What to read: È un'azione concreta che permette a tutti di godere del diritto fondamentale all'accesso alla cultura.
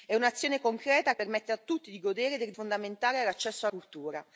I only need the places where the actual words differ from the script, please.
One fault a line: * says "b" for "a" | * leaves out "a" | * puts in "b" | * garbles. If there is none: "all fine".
* leaves out "che"
* leaves out "diritto"
* leaves out "alla"